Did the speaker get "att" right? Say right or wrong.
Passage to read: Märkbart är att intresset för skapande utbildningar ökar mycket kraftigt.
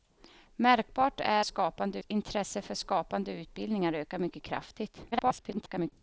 wrong